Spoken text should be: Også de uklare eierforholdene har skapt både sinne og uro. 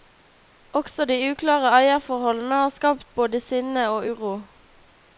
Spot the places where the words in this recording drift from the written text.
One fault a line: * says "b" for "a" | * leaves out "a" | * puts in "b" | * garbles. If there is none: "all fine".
all fine